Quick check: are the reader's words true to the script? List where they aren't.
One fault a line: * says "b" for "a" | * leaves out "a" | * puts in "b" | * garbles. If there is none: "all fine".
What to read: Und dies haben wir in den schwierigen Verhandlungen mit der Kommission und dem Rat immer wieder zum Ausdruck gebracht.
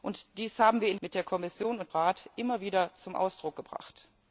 * leaves out "den schwierigen Verhandlungen"
* leaves out "dem"